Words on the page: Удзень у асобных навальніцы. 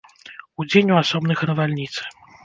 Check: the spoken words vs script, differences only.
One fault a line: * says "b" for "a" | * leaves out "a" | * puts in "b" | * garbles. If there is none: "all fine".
all fine